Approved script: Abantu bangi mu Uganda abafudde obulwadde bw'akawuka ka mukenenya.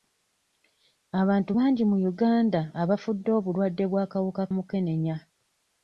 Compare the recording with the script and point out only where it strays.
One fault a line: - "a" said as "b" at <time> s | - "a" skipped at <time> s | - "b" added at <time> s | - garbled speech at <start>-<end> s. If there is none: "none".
- "ka" skipped at 4.4 s